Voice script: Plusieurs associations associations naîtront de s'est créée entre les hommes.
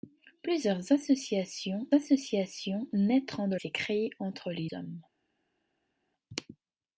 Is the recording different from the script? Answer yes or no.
no